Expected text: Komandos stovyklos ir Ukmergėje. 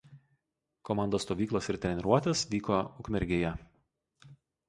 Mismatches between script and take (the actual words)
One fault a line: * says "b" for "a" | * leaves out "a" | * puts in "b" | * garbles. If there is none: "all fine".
* puts in "treniruotės vyko"